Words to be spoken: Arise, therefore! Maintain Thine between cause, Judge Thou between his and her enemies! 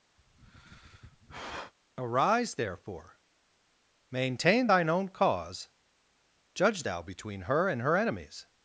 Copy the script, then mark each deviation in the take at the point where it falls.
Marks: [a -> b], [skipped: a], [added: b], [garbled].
Arise, therefore! Maintain Thine [between -> own] cause, Judge Thou between [his -> her] and her enemies!